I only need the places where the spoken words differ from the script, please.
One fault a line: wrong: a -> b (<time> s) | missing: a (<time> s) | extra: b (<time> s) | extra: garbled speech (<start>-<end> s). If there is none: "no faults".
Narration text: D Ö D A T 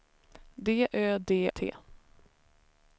missing: A (1.3 s)